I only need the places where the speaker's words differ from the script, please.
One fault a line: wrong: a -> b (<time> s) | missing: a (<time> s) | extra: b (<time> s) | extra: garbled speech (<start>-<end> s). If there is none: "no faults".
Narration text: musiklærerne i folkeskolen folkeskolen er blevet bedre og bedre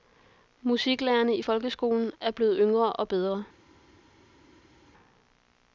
missing: folkeskolen (2.1 s)
wrong: bedre -> yngre (2.6 s)